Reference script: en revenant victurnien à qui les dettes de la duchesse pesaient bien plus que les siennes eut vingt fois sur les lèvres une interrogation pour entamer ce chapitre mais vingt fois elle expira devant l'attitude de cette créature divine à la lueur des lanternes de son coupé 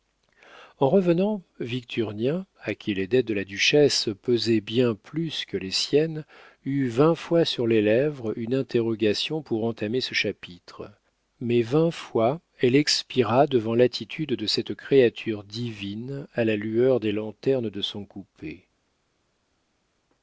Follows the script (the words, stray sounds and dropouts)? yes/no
yes